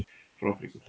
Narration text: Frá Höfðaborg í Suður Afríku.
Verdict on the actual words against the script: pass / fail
fail